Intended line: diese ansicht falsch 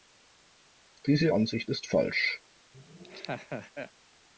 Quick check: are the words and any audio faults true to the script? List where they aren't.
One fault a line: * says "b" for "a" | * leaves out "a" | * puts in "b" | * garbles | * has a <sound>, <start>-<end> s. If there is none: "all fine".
* puts in "ist"
* has a laugh, 2.7-3.9 s